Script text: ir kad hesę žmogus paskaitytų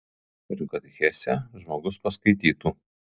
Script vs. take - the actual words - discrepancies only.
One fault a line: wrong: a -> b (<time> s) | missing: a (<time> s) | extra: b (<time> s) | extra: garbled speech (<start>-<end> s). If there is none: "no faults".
no faults